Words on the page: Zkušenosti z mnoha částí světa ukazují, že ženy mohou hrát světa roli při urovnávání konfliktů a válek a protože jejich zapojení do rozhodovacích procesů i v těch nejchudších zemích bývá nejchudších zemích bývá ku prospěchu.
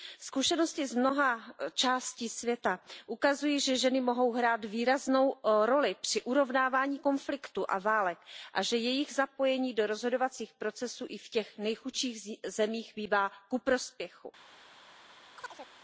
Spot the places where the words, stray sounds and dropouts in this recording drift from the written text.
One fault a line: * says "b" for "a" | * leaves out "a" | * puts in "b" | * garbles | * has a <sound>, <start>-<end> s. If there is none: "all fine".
* says "výraznou" for "světa"
* says "že" for "protože"
* leaves out "nejchudších zemích bývá"
* has a chirp, 15.3-15.7 s